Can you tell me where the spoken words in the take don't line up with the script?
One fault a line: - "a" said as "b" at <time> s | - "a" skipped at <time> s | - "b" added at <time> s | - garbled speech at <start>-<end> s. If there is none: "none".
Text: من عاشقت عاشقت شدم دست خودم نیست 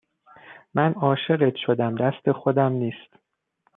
- "عاشقت" skipped at 1.6 s